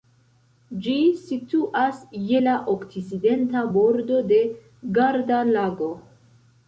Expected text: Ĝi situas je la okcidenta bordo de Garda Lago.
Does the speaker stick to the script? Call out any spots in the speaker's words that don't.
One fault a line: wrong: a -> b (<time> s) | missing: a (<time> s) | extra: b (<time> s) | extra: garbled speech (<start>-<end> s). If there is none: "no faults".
no faults